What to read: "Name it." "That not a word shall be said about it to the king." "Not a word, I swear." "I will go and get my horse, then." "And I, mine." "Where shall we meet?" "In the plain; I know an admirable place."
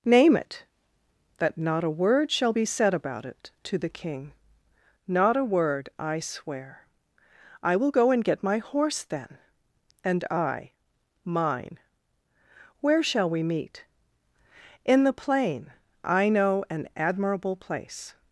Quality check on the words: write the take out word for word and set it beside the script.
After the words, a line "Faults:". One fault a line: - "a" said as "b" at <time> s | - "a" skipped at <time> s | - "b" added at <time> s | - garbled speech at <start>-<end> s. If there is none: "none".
"Name it." "That not a word shall be said about it to the king." "Not a word, I swear." "I will go and get my horse, then." "And I, mine." "Where shall we meet?" "In the plain; I know an admirable place."
Faults:
none